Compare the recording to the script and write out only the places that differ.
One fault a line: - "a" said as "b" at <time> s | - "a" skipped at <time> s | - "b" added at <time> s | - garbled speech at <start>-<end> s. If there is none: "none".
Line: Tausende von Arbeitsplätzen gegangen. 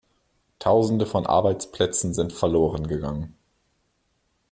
- "sind verloren" added at 2.1 s